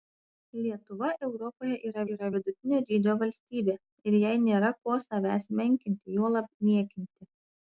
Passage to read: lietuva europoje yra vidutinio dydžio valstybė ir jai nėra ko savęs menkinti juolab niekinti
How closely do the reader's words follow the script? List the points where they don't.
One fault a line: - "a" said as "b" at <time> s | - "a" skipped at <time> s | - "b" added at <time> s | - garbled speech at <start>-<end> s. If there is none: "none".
- "yra" added at 2.1 s